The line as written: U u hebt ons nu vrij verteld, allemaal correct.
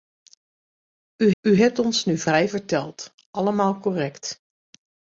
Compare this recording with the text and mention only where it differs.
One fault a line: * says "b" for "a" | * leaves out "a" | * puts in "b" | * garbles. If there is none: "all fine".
all fine